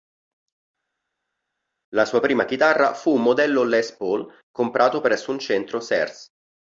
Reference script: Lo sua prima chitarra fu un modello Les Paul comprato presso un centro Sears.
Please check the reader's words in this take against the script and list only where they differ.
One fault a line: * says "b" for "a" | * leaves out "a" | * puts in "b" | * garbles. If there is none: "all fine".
* says "La" for "Lo"